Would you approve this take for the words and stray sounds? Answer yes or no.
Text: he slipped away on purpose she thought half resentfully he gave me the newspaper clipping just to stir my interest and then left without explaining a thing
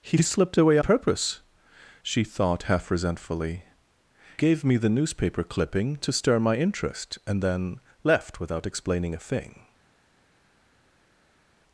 no